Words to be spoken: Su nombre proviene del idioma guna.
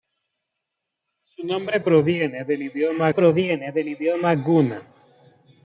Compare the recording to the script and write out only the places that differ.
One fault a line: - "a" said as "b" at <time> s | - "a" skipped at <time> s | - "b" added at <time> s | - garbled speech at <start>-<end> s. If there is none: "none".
- "proviene del idioma" added at 3.1 s